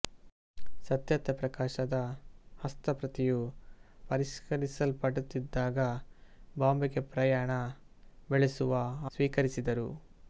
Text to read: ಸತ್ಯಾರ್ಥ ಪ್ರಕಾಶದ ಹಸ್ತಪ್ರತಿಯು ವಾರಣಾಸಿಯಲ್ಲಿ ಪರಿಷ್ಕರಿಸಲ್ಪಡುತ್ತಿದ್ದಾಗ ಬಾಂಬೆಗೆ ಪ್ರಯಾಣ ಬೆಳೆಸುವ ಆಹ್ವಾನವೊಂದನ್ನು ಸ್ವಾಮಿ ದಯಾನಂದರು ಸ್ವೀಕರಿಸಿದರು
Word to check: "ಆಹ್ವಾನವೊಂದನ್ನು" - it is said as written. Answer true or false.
false